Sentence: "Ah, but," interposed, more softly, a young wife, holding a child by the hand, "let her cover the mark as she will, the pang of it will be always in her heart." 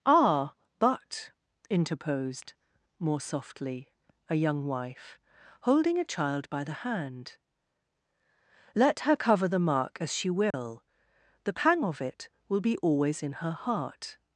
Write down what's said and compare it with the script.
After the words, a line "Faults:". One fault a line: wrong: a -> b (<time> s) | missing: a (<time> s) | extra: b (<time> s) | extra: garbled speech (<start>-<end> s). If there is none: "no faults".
"Ah, but," interposed, more softly, a young wife, holding a child by the hand, "let her cover the mark as she will, the pang of it will be always in her heart."
Faults:
no faults